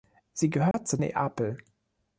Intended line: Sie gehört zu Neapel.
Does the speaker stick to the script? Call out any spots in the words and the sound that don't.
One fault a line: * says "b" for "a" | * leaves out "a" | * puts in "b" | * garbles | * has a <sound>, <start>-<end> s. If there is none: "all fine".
* has a dropout, 0.7-0.7 s